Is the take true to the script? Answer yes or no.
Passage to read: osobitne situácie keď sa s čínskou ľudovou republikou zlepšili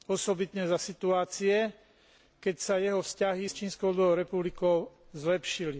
no